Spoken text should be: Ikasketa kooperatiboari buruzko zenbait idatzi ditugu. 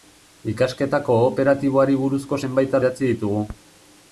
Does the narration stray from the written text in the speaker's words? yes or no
no